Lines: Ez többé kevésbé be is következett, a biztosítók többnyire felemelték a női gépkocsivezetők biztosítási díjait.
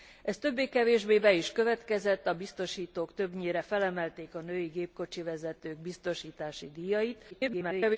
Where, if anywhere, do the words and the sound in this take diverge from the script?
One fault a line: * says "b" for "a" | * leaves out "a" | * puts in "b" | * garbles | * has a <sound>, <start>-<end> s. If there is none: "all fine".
* garbles